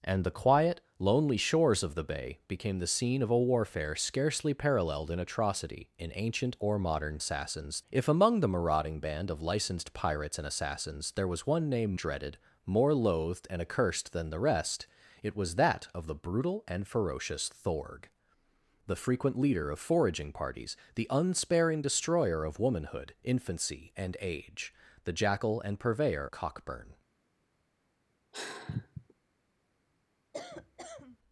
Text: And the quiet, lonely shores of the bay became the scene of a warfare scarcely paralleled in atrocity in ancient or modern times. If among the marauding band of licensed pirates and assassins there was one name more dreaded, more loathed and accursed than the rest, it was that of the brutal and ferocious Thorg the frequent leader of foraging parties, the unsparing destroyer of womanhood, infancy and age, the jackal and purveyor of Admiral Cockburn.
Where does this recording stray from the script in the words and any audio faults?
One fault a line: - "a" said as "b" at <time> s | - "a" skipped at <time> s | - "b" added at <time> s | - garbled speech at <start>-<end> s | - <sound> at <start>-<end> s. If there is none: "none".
- "times" said as "assassins" at 7.2 s
- "more" skipped at 12.0 s
- "of Admiral" skipped at 26.3 s
- sigh at 28.3-29.1 s
- cough at 30.3-31.2 s